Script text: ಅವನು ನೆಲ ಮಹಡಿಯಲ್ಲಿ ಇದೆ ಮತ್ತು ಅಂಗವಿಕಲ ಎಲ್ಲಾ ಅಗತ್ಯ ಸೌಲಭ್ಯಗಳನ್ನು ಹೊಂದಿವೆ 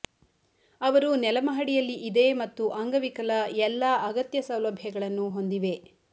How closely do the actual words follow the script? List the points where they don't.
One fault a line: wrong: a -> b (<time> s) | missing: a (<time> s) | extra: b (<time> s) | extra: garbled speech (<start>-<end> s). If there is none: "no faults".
wrong: ಅವನು -> ಅವರು (0.8 s)